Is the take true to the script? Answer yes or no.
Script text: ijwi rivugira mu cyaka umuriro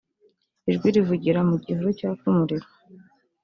no